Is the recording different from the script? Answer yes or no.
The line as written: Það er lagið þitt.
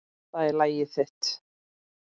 no